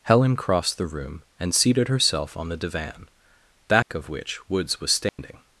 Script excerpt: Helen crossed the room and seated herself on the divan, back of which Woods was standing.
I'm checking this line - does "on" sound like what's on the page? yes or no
yes